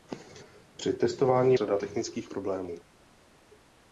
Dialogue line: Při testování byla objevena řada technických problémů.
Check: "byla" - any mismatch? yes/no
yes